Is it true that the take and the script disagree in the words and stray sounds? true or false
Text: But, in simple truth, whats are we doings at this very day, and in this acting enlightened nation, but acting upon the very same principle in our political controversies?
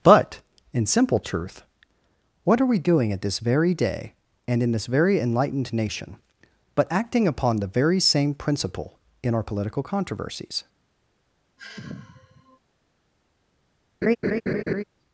true